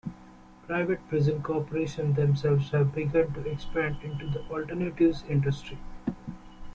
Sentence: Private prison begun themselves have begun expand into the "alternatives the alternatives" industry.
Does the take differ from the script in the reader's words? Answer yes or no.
yes